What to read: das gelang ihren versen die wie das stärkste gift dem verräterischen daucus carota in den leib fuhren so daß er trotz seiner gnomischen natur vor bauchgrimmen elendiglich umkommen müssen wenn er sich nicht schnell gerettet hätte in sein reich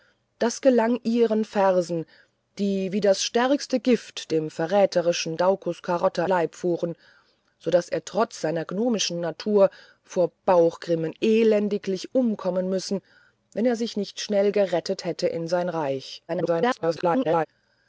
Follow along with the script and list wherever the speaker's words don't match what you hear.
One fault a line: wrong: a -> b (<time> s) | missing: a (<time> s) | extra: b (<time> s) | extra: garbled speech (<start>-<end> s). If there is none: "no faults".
missing: in den (6.2 s)
extra: garbled speech (16.3-17.5 s)